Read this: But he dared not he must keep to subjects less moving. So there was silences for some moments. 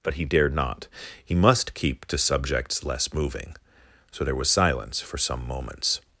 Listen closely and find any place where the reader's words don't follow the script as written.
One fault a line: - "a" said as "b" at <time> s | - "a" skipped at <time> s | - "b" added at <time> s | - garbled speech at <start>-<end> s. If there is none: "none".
- "silences" said as "silence" at 4.5 s